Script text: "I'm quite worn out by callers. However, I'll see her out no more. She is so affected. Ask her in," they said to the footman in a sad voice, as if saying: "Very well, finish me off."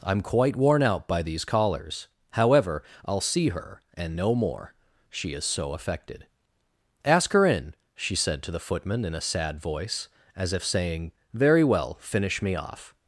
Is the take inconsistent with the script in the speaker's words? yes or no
yes